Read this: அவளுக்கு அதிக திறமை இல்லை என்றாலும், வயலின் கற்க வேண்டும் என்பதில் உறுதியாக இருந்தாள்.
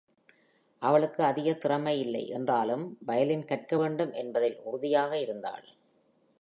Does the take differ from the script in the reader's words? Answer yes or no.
no